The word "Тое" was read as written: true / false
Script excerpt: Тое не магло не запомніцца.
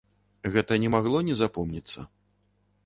false